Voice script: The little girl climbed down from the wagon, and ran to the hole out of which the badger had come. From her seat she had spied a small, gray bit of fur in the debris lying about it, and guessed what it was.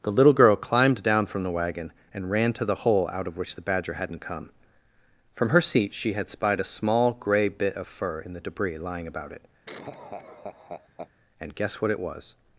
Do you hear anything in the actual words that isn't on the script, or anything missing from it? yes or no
yes